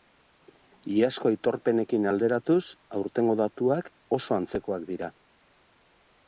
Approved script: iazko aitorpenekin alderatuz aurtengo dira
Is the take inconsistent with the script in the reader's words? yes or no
yes